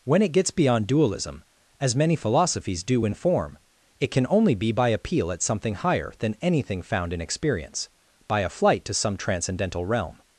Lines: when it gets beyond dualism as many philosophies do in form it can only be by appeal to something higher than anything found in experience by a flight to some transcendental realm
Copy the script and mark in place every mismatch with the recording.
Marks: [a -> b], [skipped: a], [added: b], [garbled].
when it gets beyond dualism as many philosophies do in form it can only be by appeal [to -> at] something higher than anything found in experience by a flight to some transcendental realm